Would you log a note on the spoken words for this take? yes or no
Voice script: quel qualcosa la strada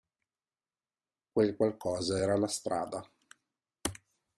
yes